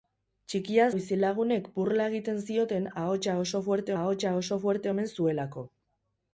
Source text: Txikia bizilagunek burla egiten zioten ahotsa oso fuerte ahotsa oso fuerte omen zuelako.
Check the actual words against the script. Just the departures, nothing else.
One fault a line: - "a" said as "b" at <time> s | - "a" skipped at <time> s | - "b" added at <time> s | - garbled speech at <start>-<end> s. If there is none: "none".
none